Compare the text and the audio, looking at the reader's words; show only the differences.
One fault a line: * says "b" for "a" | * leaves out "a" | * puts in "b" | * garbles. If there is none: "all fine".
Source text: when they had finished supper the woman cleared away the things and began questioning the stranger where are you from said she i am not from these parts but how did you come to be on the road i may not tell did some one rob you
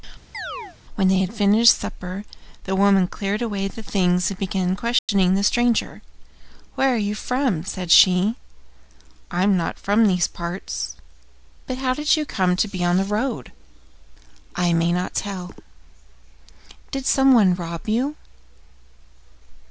all fine